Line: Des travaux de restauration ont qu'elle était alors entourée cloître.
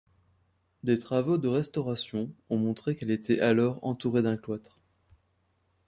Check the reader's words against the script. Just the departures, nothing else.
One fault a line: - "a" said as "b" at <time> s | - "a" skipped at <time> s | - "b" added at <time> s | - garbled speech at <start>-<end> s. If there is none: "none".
- "montré" added at 2.6 s
- "d'un" added at 4.2 s